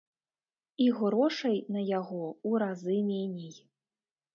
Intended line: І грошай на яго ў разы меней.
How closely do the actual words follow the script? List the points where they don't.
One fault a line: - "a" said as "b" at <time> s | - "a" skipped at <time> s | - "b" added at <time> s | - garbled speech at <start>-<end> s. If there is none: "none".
none